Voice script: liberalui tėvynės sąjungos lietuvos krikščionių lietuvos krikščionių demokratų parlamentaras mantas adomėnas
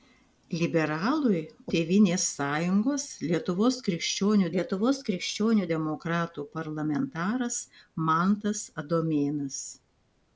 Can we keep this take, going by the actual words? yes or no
yes